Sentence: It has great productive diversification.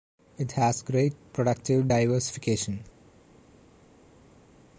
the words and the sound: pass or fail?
pass